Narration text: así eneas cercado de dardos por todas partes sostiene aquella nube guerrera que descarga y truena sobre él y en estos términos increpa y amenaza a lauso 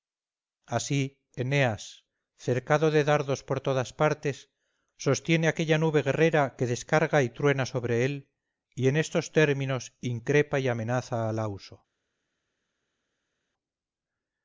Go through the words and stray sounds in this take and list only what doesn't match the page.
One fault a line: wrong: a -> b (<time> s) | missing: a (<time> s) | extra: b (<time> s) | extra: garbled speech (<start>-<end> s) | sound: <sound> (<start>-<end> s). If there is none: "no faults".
no faults